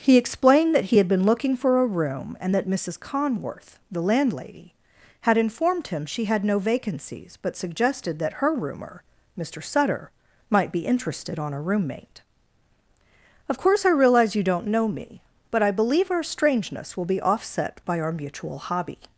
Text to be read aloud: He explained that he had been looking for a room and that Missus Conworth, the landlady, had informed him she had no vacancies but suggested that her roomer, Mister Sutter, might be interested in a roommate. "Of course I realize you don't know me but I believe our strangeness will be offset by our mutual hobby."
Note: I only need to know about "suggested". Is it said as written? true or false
true